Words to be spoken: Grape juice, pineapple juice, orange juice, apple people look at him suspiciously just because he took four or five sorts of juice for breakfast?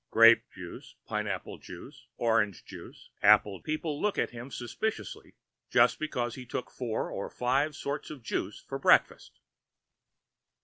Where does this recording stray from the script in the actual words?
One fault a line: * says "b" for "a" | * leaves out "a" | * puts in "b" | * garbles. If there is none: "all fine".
all fine